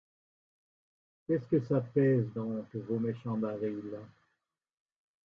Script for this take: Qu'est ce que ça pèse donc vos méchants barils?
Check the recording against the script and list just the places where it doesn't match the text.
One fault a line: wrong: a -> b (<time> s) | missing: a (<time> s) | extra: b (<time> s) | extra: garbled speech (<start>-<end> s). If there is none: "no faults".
no faults